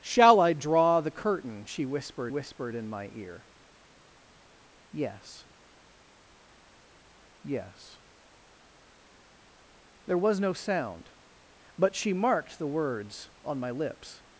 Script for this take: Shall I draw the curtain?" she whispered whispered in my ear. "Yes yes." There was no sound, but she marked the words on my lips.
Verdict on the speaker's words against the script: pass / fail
pass